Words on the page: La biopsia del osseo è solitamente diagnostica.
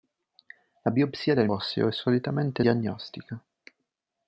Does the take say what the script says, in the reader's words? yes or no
yes